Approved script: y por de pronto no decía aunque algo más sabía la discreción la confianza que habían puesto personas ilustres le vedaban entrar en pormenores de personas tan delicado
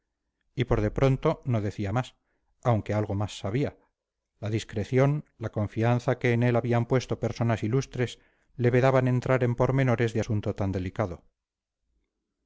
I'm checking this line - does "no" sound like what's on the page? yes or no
yes